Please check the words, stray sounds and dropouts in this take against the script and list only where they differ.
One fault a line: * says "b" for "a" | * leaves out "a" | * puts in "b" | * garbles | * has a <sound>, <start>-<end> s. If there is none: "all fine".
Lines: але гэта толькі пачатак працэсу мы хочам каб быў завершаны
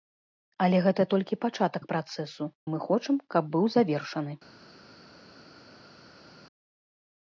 all fine